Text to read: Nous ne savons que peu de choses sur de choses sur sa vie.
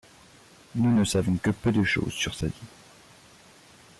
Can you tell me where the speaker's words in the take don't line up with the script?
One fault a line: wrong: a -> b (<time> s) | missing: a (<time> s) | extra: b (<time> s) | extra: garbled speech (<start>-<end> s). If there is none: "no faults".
missing: de choses sur (2.3 s)